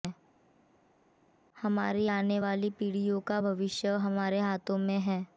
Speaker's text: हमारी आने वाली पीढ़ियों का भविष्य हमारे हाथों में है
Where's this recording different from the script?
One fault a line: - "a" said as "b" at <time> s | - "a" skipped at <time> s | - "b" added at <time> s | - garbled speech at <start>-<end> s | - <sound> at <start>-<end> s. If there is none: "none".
none